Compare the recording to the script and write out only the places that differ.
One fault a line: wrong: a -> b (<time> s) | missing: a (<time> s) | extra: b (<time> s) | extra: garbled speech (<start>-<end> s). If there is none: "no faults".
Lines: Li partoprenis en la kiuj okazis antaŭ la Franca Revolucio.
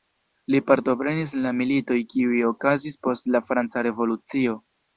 extra: militoj (1.6 s)
wrong: antaŭ -> post (3.1 s)